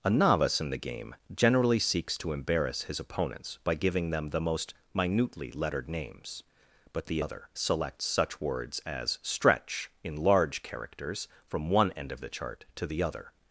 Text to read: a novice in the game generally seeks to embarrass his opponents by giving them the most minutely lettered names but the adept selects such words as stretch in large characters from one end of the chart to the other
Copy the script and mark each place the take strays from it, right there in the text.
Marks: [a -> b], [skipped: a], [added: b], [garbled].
a novice in the game generally seeks to embarrass his opponents by giving them the most minutely lettered names but the [adept -> other] selects such words as stretch in large characters from one end of the chart to the other